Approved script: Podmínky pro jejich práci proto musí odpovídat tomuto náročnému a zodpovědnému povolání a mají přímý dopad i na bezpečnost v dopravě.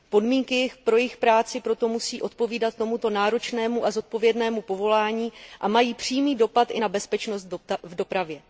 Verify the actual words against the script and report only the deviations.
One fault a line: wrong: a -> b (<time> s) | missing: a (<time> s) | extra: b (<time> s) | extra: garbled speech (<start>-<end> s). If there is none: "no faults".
no faults